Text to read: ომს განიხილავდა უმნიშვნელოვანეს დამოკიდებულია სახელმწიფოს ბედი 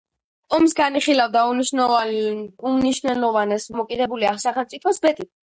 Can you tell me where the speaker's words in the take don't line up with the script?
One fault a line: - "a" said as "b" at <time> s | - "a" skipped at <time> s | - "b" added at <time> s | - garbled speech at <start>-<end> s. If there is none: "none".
none